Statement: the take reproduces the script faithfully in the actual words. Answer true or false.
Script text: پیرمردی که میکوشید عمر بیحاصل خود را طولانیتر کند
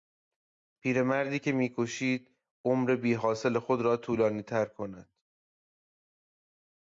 true